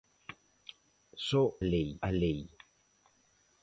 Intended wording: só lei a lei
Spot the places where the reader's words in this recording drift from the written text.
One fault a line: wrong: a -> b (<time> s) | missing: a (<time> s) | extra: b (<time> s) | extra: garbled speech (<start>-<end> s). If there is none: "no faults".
no faults